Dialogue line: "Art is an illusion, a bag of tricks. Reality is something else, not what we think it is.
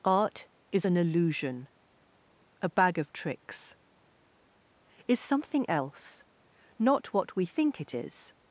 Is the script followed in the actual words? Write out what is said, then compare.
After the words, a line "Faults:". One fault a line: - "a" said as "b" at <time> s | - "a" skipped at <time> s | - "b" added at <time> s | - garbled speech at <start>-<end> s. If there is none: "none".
"Art is an illusion, a bag of tricks. is something else, not what we think it is.
Faults:
- "Reality" skipped at 3.7 s